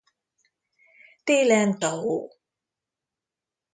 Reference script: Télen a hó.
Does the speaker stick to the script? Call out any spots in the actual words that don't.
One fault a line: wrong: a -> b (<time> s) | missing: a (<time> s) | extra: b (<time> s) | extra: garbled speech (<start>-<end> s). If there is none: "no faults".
no faults